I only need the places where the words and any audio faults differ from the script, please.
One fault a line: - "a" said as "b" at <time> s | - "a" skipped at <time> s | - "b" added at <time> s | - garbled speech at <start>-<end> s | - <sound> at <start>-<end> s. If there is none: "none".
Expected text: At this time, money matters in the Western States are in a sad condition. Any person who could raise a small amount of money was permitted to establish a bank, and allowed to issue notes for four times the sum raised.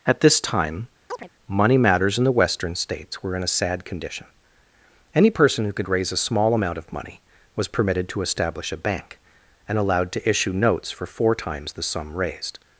- chirp at 1.1-1.3 s
- "are" said as "were" at 3.2 s